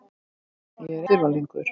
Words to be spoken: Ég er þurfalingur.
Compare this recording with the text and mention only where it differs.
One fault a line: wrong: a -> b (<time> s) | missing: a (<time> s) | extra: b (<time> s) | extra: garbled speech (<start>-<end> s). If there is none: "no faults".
no faults